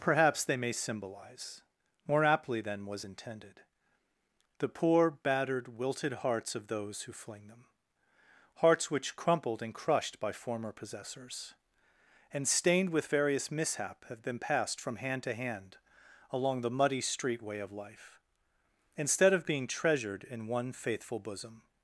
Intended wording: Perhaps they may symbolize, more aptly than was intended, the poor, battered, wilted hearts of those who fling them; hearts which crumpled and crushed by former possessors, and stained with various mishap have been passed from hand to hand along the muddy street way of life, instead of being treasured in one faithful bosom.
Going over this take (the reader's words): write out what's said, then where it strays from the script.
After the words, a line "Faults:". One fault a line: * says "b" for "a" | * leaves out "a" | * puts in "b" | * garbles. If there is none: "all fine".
Perhaps they may symbolize, more aptly than was intended, the poor, battered, wilted hearts of those who fling them; hearts which crumpled and crushed by former possessors, and stained with various mishap have been passed from hand to hand along the muddy street way of life, instead of being treasured in one faithful bosom.
Faults:
all fine